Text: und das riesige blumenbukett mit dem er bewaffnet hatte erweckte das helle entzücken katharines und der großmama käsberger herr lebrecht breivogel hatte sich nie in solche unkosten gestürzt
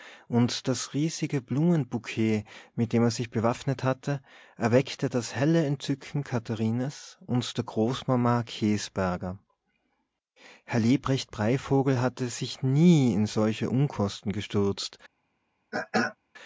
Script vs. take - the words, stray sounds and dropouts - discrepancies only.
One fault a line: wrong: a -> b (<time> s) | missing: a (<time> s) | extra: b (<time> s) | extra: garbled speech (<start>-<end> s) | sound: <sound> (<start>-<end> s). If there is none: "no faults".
extra: sich (3.1 s)
sound: throat clearing (15.7-16.2 s)